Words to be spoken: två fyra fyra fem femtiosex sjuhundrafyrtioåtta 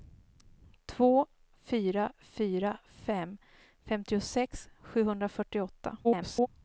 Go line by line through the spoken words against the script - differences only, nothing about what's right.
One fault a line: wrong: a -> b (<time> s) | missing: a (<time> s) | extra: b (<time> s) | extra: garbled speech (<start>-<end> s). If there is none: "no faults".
extra: garbled speech (6.0-6.5 s)